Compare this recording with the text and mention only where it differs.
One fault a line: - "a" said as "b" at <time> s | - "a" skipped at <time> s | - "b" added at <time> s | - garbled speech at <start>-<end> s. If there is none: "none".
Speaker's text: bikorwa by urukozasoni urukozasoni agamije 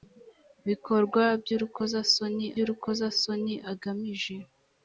none